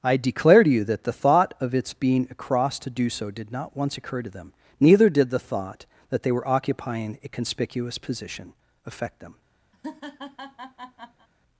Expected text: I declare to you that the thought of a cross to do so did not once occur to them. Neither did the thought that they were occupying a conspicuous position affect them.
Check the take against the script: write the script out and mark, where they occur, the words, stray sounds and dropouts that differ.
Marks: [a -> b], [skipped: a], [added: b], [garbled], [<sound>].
I declare to you that the thought of [added: its being] a cross to do so did not once occur to them. Neither did the thought that they were occupying a conspicuous position affect them. [laugh]